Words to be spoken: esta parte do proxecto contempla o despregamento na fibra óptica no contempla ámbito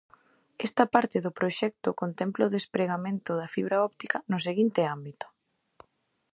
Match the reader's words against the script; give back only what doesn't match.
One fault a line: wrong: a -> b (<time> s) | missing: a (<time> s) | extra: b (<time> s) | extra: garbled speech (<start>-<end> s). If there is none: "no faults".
wrong: na -> da (3.4 s)
wrong: contempla -> seguinte (4.5 s)